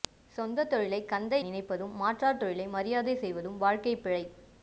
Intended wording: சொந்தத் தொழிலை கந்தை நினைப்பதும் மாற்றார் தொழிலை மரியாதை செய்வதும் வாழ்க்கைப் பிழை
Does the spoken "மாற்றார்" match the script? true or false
true